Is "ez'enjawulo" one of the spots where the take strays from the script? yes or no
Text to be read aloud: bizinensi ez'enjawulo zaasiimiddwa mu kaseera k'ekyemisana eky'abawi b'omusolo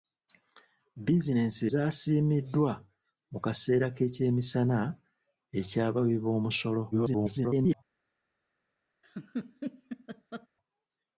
yes